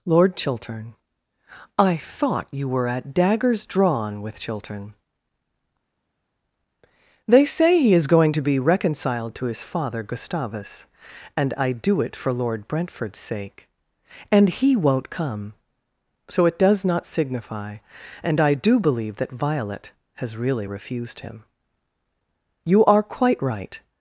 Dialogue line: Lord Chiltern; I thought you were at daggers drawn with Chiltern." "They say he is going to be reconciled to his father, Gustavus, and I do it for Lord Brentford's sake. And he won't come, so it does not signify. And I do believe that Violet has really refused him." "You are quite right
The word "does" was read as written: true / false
true